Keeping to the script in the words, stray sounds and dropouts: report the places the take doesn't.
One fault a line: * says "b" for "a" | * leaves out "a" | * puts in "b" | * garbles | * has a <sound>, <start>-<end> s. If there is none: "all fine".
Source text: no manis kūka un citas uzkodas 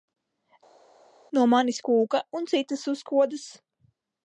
all fine